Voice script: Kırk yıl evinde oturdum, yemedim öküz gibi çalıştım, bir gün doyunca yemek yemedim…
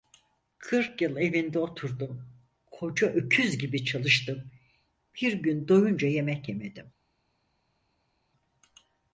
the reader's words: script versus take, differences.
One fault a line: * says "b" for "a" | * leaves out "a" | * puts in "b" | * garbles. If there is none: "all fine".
* says "koca" for "yemedim"